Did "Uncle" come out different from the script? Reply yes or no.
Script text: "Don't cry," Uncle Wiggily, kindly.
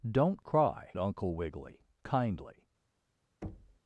no